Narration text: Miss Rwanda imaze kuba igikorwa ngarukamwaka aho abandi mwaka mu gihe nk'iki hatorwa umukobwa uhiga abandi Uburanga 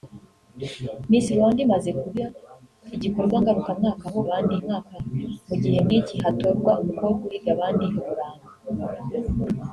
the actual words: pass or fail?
pass